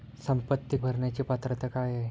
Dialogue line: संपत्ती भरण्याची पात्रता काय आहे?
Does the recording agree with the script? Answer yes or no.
yes